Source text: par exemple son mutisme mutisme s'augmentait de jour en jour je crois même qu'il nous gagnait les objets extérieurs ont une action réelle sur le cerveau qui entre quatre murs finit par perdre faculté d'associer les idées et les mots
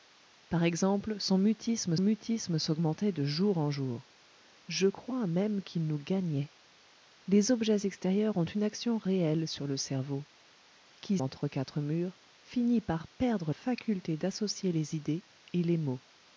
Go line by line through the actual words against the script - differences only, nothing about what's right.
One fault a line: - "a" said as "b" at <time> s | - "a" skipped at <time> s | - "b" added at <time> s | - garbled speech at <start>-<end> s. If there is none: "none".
none